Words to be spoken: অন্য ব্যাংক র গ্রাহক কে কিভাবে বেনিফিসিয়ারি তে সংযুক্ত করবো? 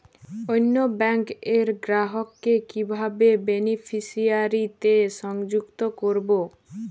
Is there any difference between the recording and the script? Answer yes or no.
no